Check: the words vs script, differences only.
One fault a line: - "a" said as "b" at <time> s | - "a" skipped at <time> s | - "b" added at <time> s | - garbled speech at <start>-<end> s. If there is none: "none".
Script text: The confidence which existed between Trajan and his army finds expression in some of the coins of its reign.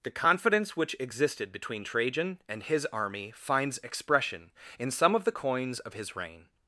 - "its" said as "his" at 5.9 s